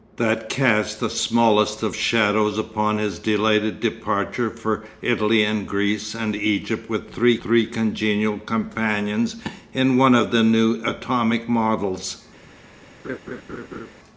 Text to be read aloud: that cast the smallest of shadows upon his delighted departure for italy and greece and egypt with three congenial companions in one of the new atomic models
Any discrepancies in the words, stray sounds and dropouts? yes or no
yes